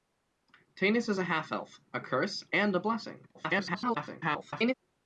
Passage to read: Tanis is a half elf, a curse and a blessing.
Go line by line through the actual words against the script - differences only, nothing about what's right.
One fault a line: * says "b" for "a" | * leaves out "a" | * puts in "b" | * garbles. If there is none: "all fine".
* garbles